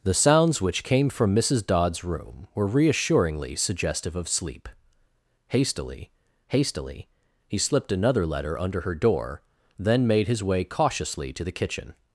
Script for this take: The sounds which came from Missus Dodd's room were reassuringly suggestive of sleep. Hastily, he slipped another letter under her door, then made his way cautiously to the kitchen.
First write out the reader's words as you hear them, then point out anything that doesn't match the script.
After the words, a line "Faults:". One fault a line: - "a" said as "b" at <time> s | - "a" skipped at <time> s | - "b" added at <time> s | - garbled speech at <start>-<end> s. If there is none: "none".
The sounds which came from Missus Dodd's room were reassuringly suggestive of sleep. Hastily hastily, he slipped another letter under her door, then made his way cautiously to the kitchen.
Faults:
- "hastily" added at 6.5 s